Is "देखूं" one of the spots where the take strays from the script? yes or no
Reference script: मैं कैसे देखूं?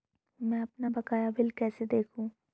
no